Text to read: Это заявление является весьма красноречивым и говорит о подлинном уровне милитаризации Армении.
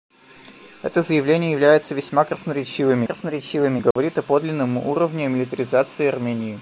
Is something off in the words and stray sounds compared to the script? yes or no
yes